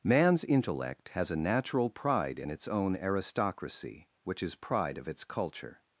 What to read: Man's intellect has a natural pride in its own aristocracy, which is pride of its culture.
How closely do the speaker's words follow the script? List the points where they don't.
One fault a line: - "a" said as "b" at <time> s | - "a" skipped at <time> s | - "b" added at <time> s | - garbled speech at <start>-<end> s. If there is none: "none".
none